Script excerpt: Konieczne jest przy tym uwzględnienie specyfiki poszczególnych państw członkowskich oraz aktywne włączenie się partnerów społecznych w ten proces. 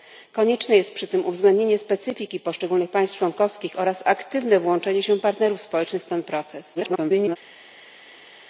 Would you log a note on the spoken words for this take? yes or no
yes